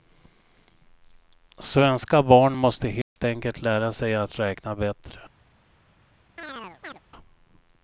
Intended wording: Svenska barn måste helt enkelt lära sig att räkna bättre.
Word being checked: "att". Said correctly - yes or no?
yes